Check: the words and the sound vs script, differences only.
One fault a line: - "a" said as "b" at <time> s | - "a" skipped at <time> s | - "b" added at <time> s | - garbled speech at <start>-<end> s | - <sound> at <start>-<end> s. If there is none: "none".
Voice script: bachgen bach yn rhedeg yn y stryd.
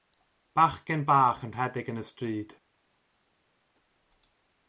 none